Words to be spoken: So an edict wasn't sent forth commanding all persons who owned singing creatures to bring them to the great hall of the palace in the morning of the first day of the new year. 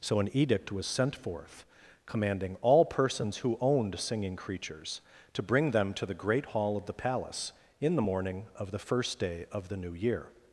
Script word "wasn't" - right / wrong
wrong